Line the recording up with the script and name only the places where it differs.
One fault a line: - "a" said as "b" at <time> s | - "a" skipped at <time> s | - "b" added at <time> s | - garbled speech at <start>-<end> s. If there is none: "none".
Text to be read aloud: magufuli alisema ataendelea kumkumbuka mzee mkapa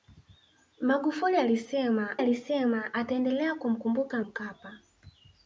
- "alisema" added at 2.2 s
- "mzee" skipped at 4.2 s